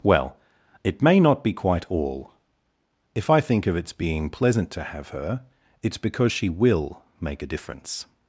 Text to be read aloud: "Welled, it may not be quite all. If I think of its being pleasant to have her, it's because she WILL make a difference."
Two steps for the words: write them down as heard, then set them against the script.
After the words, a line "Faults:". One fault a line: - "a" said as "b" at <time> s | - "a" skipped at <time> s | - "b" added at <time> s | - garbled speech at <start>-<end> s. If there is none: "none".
"Well, it may not be quite all. If I think of its being pleasant to have her, it's because she WILL make a difference."
Faults:
- "Welled" said as "Well" at 0.0 s